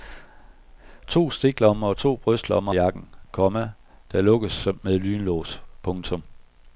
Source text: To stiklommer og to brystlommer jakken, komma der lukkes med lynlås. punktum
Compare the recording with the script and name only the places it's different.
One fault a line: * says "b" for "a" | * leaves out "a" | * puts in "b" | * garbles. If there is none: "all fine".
all fine